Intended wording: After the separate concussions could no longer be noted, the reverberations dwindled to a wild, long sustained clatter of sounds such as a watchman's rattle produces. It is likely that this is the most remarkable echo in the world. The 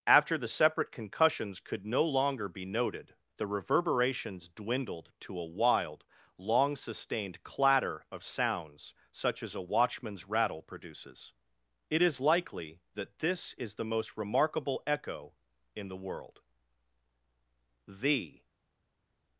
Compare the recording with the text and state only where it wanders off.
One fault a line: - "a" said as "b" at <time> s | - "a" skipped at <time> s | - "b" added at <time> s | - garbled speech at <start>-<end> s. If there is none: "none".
none